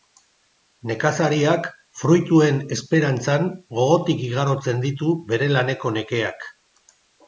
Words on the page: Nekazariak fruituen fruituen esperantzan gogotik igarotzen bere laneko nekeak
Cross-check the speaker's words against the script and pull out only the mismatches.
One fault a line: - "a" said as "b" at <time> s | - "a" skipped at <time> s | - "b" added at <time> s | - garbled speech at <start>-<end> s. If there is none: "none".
- "fruituen" skipped at 2.6 s
- "ditu" added at 4.9 s